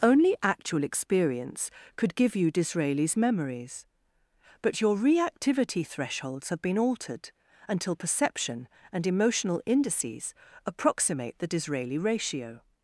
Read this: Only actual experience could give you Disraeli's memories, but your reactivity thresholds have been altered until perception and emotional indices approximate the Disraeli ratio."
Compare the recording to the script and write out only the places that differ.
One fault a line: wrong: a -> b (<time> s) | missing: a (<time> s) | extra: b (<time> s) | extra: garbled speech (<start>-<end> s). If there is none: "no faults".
no faults